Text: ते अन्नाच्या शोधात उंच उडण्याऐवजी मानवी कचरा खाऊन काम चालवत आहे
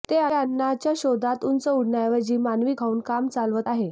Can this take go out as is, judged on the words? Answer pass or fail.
fail